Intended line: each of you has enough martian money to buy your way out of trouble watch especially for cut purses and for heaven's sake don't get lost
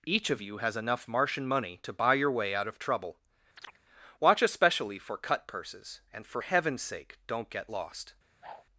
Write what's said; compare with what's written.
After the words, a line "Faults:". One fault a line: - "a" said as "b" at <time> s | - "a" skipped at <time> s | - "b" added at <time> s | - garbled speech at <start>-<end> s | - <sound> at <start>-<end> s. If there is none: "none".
each of you has enough martian money to buy your way out of trouble watch especially for cut purses and for heaven's sake don't get lost
Faults:
- chirp at 3.6-3.8 s
- whoosh at 8.4-8.6 s